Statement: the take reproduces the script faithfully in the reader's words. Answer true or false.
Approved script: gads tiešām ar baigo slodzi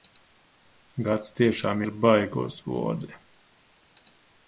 true